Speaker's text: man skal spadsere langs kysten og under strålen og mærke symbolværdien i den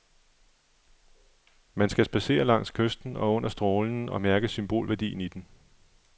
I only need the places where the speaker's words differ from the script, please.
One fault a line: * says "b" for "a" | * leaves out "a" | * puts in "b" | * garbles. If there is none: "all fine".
all fine